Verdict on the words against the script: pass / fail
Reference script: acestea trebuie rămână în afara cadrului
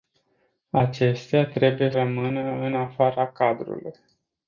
pass